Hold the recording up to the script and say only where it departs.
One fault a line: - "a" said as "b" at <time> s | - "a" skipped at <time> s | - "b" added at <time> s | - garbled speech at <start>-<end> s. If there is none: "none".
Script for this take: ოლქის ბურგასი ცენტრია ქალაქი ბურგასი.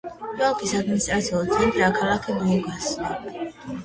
- "ბურგასი" said as "ადმინისტრაციული" at 0.8 s